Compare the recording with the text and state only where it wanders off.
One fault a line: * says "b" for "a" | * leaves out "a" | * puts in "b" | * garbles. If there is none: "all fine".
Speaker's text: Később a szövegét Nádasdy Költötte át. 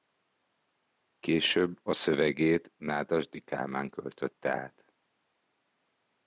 * puts in "Kálmán"